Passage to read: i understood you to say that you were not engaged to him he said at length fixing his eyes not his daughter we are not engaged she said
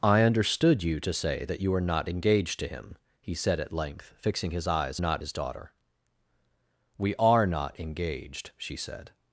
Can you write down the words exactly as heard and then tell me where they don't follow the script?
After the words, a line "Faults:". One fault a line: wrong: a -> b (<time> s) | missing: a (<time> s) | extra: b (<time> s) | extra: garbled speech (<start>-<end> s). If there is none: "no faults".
i understood you to say that you were not engaged to him he said at length fixing his eyes not his daughter we are not engaged she said
Faults:
no faults